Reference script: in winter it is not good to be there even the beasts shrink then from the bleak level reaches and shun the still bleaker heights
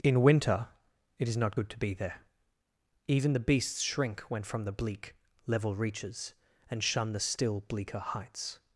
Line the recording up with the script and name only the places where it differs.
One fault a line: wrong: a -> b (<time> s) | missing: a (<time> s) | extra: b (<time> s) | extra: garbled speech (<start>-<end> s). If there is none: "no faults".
wrong: then -> when (4.3 s)